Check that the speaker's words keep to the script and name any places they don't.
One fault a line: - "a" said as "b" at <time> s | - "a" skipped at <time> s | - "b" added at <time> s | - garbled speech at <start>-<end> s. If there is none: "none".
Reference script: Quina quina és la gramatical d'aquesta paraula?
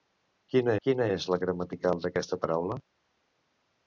none